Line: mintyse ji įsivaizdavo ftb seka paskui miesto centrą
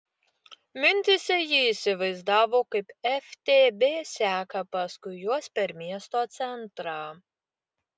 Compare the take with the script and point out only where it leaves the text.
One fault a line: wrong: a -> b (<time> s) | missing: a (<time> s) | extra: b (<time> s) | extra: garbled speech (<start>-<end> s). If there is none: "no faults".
extra: kaip (2.8 s)
extra: juos per (5.2 s)